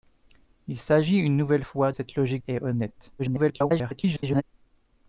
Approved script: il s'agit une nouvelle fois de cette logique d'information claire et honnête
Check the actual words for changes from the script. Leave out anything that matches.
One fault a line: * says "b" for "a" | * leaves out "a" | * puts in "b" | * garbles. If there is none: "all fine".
* leaves out "de"
* leaves out "d'information claire"
* garbles